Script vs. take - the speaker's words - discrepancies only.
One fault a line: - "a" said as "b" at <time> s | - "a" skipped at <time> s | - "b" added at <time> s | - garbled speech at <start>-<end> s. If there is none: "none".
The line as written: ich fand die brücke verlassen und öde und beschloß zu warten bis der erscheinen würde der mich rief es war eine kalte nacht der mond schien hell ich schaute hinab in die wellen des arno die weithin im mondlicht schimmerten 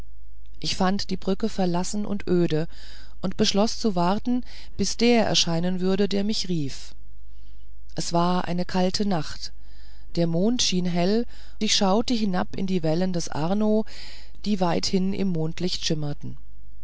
none